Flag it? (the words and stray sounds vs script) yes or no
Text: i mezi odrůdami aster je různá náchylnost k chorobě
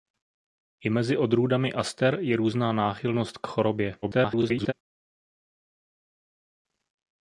yes